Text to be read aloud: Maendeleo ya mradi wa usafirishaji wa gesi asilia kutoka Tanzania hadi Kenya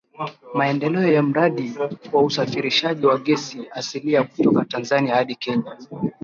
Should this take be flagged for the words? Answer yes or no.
no